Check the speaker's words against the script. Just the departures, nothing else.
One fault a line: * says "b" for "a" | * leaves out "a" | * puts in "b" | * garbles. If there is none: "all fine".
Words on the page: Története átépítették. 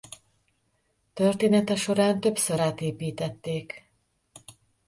* puts in "során többször"